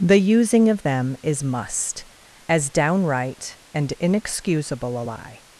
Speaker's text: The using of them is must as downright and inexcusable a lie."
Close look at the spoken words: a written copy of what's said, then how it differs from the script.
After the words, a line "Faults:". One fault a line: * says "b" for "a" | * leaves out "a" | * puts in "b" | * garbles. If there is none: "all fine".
The using of them is must as downright and inexcusable a lie."
Faults:
all fine